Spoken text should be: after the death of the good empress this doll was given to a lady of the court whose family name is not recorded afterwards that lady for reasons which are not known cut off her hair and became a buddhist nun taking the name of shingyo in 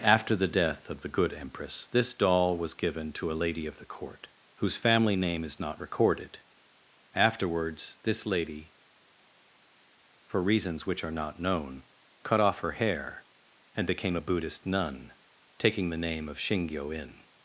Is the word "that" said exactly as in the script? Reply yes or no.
no